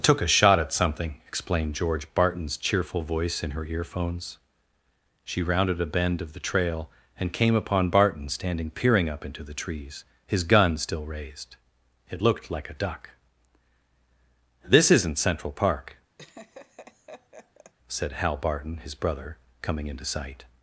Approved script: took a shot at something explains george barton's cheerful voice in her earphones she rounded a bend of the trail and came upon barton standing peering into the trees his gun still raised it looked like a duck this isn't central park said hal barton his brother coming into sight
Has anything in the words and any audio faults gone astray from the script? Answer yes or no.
yes